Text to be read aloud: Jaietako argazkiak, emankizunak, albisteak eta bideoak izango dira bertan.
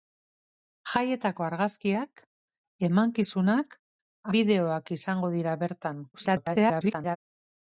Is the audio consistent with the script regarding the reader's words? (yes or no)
no